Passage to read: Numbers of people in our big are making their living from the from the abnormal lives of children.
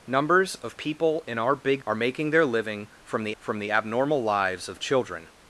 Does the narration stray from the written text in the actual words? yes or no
no